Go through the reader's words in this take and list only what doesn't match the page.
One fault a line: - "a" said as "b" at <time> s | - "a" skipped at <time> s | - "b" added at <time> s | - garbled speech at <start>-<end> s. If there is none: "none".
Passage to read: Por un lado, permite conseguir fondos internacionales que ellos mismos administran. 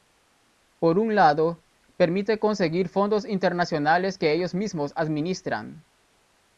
none